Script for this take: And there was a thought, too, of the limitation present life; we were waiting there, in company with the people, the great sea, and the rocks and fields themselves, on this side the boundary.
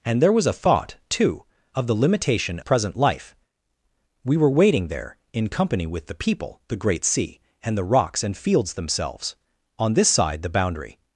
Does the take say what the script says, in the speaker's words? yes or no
yes